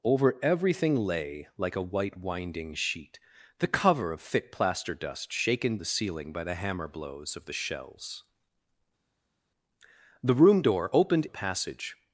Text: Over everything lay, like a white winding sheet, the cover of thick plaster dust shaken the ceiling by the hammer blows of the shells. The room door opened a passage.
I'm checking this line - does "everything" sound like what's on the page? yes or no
yes